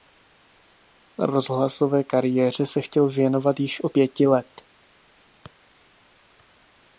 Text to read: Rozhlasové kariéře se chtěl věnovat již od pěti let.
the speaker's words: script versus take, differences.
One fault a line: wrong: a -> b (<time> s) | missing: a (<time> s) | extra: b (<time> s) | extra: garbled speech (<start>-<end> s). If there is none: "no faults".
no faults